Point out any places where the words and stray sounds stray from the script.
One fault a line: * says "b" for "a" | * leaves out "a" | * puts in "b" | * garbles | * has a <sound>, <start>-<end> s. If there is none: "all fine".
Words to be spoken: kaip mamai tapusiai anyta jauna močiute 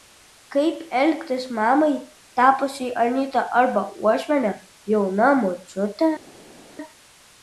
* puts in "elgtis"
* puts in "arba uošviene"